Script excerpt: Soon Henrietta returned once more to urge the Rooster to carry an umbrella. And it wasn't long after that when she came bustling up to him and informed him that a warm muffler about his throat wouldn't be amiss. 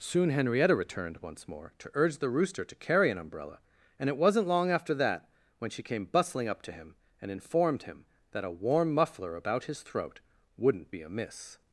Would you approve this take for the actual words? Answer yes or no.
yes